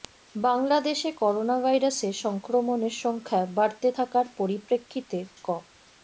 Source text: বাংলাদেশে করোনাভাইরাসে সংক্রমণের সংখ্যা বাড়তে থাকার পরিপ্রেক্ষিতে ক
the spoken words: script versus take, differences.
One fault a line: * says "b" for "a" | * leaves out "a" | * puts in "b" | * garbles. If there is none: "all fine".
all fine